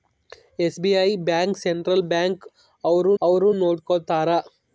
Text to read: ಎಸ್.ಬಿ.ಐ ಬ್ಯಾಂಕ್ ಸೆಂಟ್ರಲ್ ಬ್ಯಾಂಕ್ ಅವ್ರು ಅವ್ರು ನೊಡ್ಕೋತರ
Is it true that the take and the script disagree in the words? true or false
false